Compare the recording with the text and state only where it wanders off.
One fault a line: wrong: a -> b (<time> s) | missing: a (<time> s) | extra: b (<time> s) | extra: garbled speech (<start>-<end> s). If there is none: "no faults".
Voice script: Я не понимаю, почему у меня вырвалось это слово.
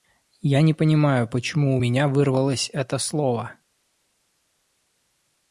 no faults